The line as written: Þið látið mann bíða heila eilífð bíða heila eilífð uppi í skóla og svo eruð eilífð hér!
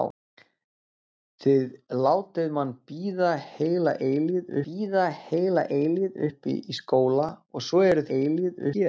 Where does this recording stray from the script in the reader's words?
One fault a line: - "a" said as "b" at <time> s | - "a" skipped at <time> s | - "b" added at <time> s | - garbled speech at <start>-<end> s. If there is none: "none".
none